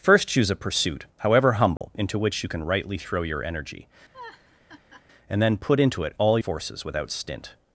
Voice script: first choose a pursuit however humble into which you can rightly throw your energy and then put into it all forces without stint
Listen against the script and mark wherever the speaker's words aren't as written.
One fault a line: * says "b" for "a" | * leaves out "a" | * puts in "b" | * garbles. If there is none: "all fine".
all fine